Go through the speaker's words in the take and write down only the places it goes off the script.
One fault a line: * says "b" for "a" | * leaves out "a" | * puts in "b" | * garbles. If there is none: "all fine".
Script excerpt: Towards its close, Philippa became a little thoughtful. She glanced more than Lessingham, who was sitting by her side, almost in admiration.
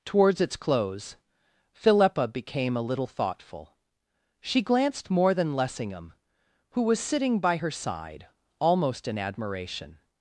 all fine